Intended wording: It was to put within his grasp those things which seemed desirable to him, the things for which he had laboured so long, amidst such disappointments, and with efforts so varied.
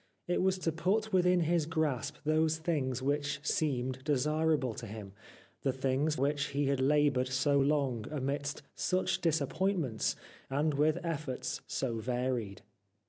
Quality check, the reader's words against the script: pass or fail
fail